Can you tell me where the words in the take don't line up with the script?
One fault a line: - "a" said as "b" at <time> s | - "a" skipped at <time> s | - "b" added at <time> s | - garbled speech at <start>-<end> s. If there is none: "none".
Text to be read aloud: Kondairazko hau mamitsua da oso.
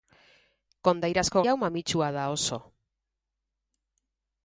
none